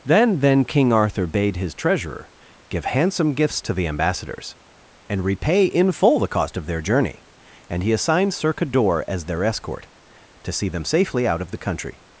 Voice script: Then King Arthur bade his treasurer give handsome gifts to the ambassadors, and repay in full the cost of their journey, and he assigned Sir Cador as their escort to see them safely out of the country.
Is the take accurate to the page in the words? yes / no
no